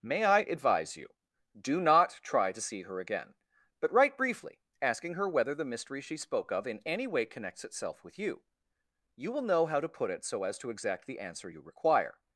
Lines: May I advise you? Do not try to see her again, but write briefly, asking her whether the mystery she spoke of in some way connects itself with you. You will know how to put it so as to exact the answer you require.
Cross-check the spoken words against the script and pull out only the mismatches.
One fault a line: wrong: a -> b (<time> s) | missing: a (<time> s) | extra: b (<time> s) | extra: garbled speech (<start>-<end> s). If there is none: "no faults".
wrong: some -> any (6.9 s)